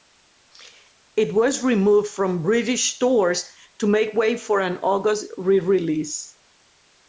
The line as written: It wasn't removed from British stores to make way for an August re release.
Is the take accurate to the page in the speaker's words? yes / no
no